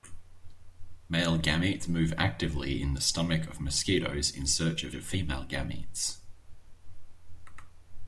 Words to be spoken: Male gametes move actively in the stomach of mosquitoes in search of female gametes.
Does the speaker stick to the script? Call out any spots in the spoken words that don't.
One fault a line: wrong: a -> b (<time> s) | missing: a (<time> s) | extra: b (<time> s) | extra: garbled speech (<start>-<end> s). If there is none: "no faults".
extra: of (4.9 s)